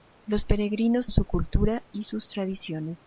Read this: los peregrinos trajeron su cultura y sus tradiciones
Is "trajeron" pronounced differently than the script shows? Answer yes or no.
yes